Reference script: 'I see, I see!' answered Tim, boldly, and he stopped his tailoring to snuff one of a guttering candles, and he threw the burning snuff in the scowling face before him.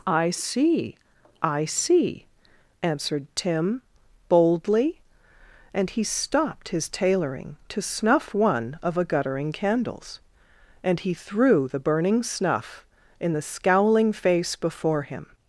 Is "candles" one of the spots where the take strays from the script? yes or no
no